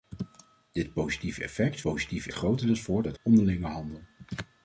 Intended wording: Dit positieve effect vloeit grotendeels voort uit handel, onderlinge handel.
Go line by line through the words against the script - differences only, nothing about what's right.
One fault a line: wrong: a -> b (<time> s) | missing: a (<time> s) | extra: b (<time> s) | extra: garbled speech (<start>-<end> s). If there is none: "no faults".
wrong: vloeit -> positieve (1.8 s)
missing: handel (3.2 s)